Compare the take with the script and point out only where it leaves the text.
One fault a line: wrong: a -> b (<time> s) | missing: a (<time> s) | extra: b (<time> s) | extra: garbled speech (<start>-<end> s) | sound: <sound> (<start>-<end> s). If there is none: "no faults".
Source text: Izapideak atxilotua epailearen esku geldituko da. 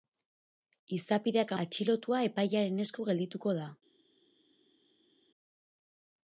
no faults